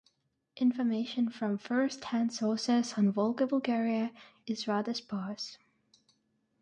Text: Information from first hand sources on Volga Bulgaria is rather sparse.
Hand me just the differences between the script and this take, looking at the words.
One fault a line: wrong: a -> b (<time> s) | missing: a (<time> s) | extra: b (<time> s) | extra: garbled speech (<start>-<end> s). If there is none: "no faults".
no faults